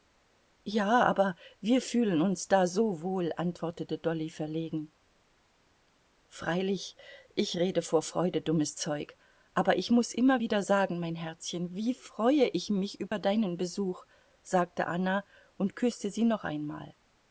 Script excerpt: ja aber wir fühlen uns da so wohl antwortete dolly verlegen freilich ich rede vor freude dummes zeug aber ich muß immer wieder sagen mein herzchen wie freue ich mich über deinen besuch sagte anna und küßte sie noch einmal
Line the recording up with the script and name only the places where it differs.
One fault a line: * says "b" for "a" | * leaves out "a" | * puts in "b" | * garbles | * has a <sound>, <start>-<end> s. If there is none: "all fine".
* has a dropout, 13.1-13.1 s